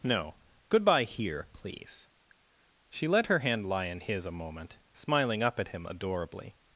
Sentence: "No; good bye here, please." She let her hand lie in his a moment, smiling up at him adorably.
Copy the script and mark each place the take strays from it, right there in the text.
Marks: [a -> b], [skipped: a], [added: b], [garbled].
"No; good bye here, please." She let her hand lie in his a moment, smiling up at him adorably.